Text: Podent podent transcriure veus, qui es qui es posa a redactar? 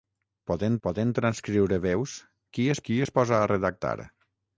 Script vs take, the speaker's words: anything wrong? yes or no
no